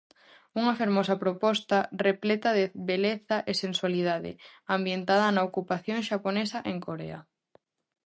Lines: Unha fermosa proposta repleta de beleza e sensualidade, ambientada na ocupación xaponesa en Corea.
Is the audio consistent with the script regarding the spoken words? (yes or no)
yes